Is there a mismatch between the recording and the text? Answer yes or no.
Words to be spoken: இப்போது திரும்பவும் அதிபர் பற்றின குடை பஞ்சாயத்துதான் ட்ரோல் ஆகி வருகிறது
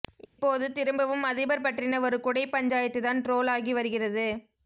yes